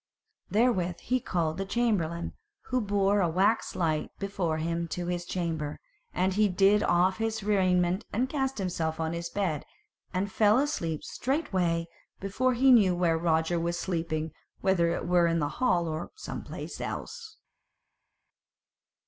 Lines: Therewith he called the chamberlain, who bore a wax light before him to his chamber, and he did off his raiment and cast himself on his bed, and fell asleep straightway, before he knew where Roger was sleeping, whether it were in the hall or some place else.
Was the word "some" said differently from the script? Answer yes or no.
no